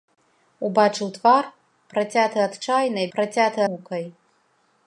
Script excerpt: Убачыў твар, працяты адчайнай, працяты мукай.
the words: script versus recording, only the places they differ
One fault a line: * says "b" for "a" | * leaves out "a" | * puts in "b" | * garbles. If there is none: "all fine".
all fine